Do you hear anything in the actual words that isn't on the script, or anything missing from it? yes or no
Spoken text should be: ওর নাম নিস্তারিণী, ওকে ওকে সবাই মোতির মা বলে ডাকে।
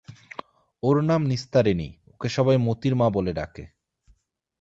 yes